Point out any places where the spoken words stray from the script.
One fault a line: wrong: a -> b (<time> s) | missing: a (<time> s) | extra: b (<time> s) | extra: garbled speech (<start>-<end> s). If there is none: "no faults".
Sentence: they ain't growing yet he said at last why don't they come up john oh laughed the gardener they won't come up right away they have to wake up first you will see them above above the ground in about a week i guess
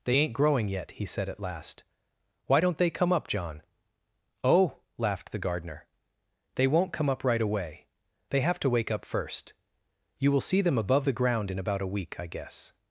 missing: above (11.1 s)